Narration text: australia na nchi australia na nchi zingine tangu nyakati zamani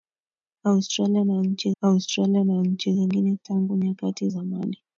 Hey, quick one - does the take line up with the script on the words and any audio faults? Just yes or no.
yes